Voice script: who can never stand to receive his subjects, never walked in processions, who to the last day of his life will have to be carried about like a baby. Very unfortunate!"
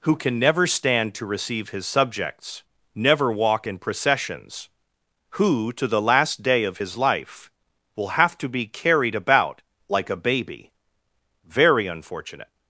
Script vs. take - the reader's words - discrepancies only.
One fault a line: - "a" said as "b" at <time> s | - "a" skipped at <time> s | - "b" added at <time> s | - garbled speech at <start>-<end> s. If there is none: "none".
- "walked" said as "walk" at 3.3 s